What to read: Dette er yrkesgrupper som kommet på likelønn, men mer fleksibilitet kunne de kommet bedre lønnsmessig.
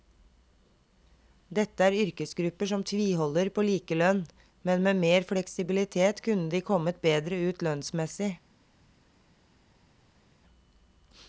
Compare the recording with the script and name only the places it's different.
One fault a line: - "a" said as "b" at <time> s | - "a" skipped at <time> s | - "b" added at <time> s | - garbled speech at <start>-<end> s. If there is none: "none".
- "kommet" said as "tviholder" at 2.9 s
- "med" added at 4.8 s
- "ut" added at 7.5 s